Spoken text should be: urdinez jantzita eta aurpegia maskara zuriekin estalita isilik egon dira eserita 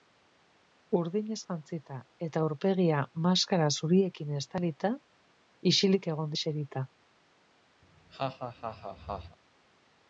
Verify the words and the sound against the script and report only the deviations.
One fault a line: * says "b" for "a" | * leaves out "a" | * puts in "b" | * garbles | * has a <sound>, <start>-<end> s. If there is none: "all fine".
* leaves out "dira"
* has a laugh, 7.8-9.4 s